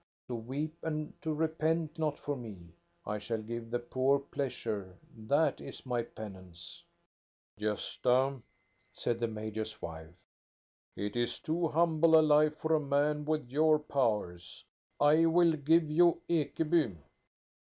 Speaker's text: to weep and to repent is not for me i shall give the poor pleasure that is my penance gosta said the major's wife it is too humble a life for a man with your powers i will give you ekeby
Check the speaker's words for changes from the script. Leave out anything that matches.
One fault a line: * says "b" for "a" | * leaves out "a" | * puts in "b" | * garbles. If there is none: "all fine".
* leaves out "is"